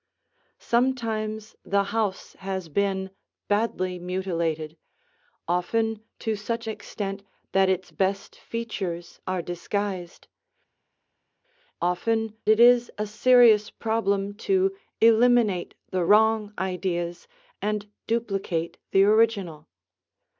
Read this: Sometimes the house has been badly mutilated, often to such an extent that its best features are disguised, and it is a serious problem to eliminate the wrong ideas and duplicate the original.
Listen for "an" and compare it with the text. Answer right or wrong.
wrong